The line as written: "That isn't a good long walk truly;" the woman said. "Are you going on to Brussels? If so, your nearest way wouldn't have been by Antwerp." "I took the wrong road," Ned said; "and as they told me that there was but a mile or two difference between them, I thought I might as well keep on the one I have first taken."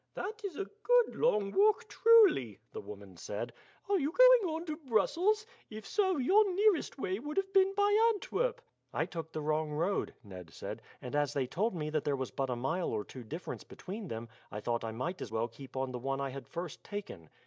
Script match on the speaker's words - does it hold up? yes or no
no